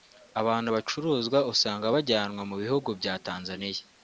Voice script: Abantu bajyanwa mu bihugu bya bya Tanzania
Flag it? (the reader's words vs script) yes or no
yes